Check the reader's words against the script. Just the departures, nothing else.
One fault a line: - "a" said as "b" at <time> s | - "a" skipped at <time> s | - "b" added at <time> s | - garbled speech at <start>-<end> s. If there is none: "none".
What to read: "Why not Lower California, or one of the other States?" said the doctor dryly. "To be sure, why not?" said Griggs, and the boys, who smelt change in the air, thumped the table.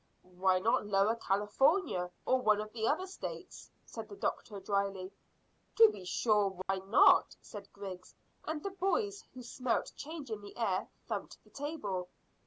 none